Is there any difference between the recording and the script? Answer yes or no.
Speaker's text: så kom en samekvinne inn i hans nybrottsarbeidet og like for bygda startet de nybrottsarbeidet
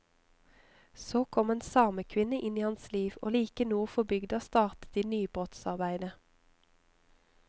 yes